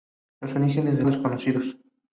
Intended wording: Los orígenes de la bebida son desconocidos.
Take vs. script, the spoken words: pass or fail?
fail